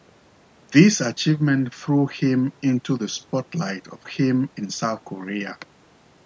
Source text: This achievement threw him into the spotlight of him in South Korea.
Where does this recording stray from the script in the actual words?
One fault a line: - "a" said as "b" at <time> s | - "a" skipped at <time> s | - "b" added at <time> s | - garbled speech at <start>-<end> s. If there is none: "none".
none